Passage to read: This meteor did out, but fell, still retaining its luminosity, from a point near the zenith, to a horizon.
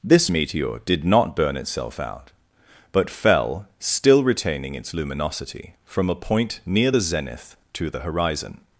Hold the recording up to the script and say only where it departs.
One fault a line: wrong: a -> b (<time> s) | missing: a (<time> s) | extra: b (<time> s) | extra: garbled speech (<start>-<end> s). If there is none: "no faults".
extra: not burn itself (1.0 s)
wrong: a -> the (7.9 s)